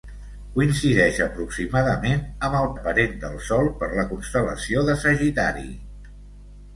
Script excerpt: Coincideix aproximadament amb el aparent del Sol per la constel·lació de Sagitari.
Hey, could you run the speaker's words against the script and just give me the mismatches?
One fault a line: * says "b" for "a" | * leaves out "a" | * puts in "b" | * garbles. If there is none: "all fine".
all fine